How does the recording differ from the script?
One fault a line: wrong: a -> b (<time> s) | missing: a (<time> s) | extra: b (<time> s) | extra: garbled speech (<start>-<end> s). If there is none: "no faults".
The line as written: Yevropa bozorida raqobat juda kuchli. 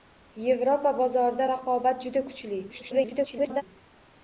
extra: garbled speech (2.7-3.6 s)